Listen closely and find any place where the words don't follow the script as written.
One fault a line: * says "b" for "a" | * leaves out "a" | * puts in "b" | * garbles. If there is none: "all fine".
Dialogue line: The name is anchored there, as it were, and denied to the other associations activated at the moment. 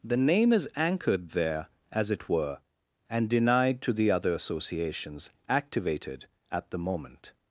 all fine